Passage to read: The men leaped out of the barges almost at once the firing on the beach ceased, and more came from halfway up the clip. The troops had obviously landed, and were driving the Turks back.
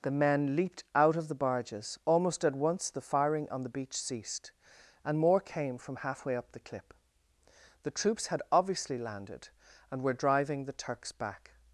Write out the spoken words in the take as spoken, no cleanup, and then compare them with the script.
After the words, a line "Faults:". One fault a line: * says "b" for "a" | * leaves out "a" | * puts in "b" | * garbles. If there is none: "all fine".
The men leaped out of the barges almost at once the firing on the beach ceased, and more came from halfway up the clip. The troops had obviously landed, and were driving the Turks back.
Faults:
all fine